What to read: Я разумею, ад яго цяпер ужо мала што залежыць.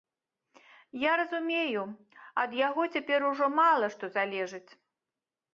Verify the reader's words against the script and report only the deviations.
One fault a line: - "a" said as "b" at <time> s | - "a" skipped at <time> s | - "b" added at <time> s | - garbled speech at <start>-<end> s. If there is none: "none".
none